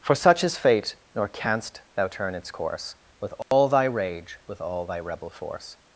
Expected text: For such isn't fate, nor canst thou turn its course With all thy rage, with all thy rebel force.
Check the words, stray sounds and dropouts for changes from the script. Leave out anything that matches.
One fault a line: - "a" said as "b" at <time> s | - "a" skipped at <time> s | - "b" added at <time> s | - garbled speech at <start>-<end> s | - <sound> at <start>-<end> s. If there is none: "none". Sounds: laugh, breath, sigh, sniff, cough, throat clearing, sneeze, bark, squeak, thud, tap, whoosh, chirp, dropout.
- "isn't" said as "is" at 0.4 s
- dropout at 3.4-3.5 s